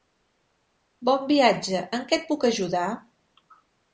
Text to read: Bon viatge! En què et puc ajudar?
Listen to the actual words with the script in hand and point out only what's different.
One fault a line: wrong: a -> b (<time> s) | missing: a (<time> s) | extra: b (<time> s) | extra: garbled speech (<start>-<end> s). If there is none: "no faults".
no faults